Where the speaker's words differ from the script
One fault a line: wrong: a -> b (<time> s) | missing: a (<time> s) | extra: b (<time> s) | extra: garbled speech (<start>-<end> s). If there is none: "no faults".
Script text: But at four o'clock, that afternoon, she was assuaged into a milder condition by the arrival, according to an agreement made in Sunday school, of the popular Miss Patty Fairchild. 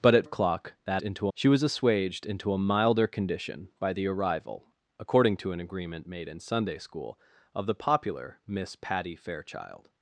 missing: four (0.3 s)
wrong: afternoon -> into (1.0 s)